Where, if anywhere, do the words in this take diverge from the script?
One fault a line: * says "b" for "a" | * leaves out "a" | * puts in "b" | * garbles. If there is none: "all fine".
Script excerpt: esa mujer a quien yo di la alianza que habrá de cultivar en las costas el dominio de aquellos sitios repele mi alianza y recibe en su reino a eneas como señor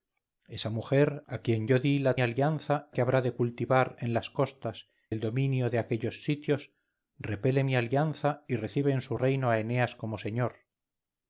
all fine